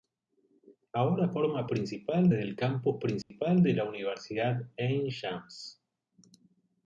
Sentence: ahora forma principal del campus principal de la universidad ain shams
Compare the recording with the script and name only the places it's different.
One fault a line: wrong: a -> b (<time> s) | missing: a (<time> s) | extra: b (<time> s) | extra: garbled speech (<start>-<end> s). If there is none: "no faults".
no faults